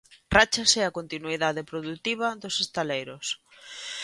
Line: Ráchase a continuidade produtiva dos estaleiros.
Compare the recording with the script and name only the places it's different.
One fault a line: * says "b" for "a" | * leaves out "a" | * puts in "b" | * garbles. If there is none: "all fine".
all fine